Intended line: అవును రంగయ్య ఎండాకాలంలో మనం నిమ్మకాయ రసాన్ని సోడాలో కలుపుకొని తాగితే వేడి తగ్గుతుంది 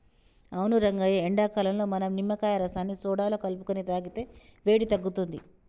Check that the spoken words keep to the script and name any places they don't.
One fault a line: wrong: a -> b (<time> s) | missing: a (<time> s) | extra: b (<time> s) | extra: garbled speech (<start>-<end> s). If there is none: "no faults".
no faults